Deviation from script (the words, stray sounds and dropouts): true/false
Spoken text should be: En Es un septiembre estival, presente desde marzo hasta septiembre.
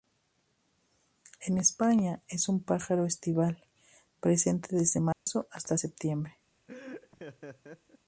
true